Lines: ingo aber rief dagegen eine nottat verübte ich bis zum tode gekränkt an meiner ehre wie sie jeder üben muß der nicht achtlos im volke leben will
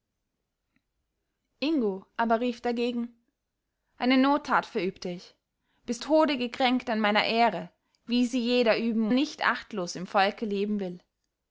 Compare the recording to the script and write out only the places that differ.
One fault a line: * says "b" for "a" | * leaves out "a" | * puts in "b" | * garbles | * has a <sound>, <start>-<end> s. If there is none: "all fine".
* leaves out "zum"
* leaves out "muß der"